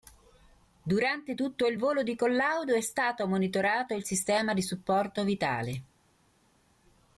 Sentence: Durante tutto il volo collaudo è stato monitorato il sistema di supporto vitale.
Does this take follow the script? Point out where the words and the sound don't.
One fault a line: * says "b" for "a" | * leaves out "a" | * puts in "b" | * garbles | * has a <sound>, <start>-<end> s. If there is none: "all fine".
* puts in "di"